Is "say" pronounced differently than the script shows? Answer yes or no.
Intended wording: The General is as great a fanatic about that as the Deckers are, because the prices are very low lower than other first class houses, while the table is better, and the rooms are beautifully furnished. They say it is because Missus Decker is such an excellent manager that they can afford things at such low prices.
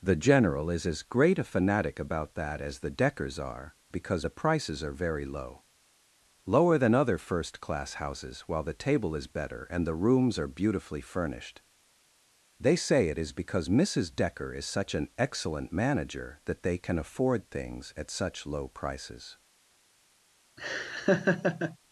no